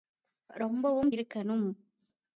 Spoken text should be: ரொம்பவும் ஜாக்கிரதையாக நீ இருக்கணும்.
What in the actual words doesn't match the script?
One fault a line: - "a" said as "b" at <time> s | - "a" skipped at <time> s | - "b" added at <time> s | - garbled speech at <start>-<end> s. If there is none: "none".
- "ஜாக்கிரதையாக நீ" skipped at 1.1 s